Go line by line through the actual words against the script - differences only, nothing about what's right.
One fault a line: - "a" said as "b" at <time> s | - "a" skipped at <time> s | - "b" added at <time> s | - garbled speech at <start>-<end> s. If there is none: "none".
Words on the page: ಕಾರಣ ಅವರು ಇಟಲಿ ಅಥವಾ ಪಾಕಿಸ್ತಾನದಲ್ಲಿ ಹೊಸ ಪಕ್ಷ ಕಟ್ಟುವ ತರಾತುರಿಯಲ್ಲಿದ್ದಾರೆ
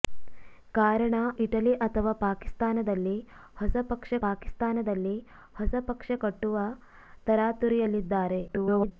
- "ಅವರು" skipped at 1.1 s
- "ಪಾಕಿಸ್ತಾನದಲ್ಲಿ ಹೊಸ ಪಕ್ಷ" added at 4.2 s
- garbled speech at 8.5-8.9 s